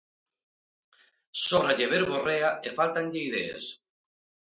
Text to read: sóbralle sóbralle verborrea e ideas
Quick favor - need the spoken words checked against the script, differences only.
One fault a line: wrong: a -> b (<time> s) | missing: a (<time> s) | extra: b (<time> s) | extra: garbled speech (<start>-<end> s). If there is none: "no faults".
missing: sóbralle (1.9 s)
extra: fáltanlle (2.8 s)